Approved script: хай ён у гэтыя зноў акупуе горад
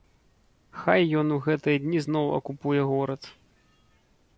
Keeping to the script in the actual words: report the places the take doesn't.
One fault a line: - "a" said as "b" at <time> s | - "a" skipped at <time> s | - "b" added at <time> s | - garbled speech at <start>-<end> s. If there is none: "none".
- "дні" added at 1.9 s